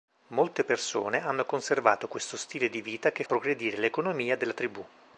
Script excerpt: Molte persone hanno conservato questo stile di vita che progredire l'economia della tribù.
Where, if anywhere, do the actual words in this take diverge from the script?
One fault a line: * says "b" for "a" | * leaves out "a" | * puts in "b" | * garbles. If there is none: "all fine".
all fine